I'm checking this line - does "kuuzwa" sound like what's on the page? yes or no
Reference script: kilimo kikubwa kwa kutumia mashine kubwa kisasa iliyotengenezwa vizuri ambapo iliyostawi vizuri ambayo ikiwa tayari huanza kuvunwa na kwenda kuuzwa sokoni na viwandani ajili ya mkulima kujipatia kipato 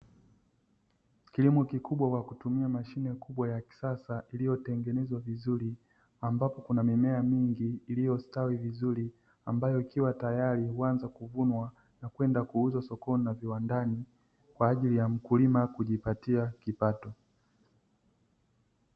yes